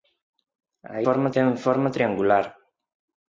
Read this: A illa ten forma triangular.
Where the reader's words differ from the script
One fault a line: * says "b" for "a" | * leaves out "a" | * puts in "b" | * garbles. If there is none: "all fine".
* says "forma" for "illa"